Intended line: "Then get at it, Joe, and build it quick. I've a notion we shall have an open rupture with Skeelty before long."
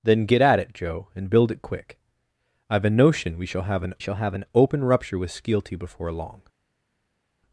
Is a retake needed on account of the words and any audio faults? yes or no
yes